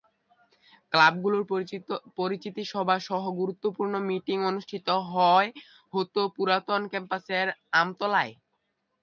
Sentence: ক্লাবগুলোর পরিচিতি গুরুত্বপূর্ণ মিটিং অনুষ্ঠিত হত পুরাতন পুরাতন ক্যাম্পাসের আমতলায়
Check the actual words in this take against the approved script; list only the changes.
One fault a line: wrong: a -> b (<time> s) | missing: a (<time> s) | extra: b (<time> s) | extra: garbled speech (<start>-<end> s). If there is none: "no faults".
extra: সভা সহ (2.7 s)
missing: পুরাতন (6.8 s)